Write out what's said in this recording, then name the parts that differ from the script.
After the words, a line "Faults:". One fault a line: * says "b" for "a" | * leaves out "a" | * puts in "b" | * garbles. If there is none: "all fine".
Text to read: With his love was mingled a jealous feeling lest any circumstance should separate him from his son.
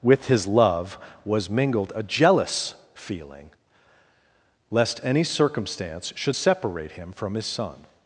With his love was mingled a jealous feeling lest any circumstance should separate him from his son.
Faults:
all fine